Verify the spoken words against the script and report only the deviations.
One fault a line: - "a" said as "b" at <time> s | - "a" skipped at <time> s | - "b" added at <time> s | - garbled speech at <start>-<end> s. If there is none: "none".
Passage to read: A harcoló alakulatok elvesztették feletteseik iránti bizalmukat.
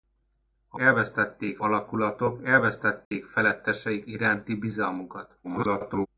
- "harcoló" said as "elvesztették" at 0.8 s
- garbled speech at 5.4-6.1 s